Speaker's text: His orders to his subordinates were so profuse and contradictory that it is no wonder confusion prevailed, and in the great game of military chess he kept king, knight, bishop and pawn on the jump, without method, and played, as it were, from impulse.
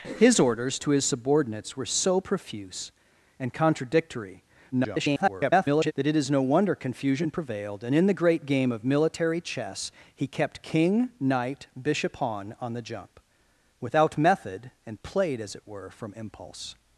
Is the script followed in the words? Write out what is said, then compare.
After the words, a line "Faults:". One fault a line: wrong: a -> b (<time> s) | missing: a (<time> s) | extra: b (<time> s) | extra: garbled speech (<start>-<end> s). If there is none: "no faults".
His orders to his subordinates were so profuse and contradictory [garbled] that it is no wonder confusion prevailed, and in the great game of military chess he kept king, knight, bishop pawn on the jump, without method, and played, as it were, from impulse.
Faults:
extra: garbled speech (4.7-5.9 s)
missing: and (12.1 s)